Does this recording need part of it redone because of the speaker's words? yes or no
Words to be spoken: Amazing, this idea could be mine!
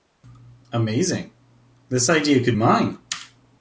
yes